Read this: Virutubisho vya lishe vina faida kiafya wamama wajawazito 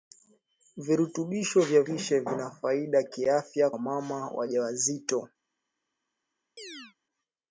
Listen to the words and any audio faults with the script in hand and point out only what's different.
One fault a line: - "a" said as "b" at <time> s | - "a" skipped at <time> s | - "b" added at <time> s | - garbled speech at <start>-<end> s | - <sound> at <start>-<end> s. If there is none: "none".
- chirp at 6.6-7.0 s